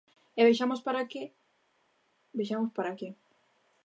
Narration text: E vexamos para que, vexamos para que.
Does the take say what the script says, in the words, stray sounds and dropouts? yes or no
yes